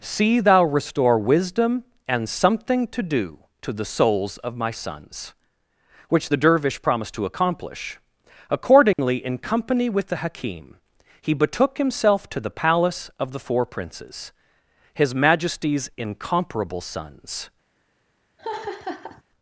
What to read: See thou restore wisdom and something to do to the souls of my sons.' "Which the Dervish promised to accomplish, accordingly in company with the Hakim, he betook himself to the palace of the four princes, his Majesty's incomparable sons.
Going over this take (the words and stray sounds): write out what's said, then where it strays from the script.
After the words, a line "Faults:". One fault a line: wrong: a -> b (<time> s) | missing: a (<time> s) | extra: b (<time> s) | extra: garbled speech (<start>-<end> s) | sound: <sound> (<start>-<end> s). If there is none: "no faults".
See thou restore wisdom and something to do to the souls of my sons.' "Which the Dervish promised to accomplish, accordingly in company with the Hakim, he betook himself to the palace of the four princes, his Majesty's incomparable sons.
Faults:
sound: dropout (8.9-9.0 s)
sound: laugh (18.4-19.2 s)